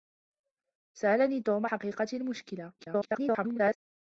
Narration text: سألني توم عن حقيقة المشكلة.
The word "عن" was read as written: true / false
false